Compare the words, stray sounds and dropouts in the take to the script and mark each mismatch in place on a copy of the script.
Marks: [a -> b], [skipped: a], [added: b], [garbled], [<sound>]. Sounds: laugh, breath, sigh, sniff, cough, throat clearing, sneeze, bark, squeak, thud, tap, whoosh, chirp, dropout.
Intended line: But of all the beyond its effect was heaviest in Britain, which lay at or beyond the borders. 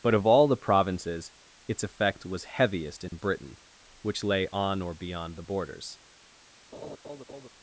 But of all the [beyond -> provinces] its effect was heaviest in [dropout] Britain, which lay [at -> on] or beyond the borders. [laugh]